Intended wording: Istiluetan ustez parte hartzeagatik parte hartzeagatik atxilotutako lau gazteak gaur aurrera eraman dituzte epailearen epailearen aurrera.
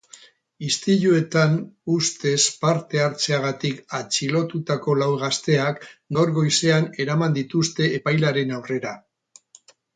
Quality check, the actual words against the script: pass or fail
fail